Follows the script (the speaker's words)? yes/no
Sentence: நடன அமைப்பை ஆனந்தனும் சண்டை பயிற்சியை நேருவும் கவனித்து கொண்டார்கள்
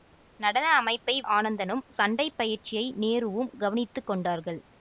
yes